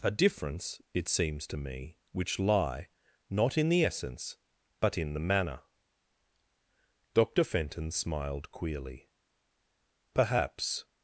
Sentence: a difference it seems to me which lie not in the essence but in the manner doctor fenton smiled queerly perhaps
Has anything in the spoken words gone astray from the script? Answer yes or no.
no